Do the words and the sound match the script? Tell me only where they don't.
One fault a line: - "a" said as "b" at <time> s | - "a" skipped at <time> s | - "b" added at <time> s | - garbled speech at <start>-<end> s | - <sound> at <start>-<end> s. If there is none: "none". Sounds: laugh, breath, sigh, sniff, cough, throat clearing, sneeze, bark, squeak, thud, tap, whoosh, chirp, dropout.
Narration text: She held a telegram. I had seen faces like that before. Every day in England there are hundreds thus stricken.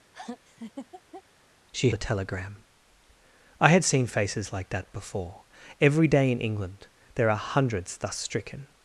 - laugh at 0.1-1.2 s
- "held" skipped at 1.9 s